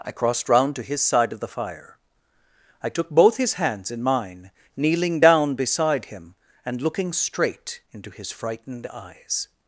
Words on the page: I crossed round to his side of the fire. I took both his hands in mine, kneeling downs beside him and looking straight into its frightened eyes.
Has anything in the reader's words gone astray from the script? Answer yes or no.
yes